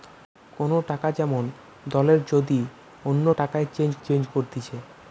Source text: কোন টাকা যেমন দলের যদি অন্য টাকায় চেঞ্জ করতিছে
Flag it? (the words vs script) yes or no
yes